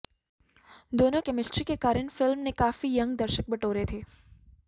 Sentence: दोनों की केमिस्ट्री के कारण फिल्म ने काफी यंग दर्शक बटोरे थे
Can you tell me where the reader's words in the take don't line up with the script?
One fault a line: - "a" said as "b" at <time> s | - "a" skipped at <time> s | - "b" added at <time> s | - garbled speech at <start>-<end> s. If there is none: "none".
- "की" skipped at 1.2 s